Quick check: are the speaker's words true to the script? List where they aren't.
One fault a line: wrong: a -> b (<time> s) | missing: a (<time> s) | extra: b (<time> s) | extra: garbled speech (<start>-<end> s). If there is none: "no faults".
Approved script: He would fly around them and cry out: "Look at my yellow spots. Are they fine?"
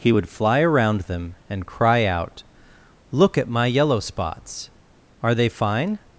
no faults